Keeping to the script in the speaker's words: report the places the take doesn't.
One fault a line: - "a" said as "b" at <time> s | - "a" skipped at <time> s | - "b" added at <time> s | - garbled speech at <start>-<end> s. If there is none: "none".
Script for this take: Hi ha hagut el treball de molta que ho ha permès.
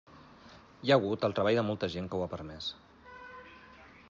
- "gent" added at 2.0 s